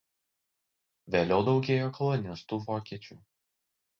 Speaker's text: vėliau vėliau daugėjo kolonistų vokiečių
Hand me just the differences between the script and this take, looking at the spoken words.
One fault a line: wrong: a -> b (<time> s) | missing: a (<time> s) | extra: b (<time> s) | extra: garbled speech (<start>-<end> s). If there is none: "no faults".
missing: vėliau (1.4 s)